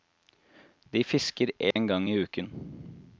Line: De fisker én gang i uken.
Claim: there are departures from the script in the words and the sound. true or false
true